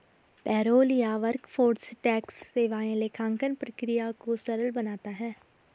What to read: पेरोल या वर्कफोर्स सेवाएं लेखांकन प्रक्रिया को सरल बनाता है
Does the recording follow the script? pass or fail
fail